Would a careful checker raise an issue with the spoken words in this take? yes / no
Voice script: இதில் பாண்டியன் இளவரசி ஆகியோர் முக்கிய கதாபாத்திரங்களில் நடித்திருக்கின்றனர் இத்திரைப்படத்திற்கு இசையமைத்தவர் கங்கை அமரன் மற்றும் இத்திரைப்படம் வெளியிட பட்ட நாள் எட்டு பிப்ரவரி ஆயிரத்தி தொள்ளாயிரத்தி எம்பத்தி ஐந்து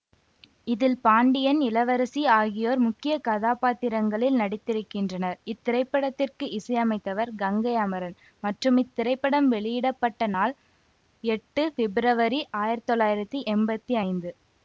no